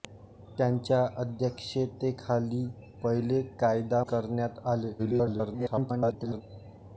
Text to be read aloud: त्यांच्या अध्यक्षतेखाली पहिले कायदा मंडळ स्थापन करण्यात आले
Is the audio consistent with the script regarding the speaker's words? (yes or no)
no